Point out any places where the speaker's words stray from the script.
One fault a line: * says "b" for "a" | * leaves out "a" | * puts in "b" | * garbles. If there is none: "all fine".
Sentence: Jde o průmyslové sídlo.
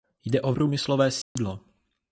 all fine